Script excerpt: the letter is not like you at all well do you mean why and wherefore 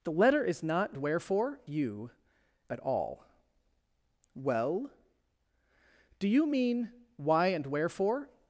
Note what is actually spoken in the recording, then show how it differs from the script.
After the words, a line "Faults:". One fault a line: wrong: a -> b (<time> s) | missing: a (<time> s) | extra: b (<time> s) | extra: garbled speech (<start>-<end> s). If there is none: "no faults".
the letter is not wherefore you at all well do you mean why and wherefore
Faults:
wrong: like -> wherefore (1.0 s)